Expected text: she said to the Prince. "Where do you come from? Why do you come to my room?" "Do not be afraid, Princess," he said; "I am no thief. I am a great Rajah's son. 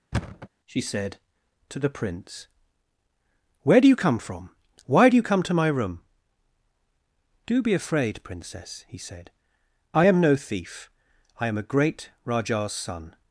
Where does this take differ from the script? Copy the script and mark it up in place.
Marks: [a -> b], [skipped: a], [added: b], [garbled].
she said to the Prince. "Where do you come from? Why do you come to my room?" "Do [skipped: not] be afraid, Princess," he said; "I am no thief. I am a great Rajah's son.